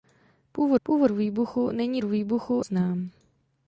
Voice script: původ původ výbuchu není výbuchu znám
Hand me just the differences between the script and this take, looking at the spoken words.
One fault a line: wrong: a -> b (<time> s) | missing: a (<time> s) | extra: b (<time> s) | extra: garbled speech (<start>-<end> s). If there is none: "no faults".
no faults